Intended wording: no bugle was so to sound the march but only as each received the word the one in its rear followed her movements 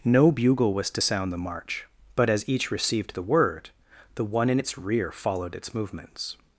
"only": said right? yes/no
no